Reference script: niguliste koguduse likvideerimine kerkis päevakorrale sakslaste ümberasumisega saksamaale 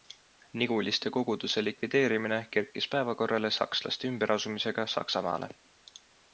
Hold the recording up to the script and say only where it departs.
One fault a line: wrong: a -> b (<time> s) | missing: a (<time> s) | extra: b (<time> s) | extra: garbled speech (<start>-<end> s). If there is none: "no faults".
no faults